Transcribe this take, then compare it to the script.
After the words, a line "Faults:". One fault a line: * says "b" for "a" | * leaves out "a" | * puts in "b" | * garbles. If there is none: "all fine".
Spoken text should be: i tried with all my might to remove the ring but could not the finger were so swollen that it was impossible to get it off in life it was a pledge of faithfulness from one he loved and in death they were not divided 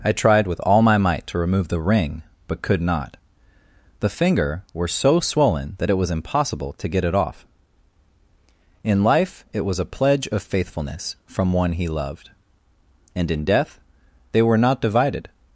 i tried with all my might to remove the ring but could not the finger were so swollen that it was impossible to get it off in life it was a pledge of faithfulness from one he loved and in death they were not divided
Faults:
all fine